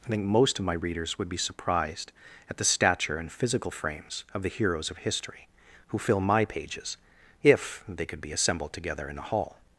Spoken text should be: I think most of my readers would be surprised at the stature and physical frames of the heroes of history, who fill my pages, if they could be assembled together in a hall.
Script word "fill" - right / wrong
right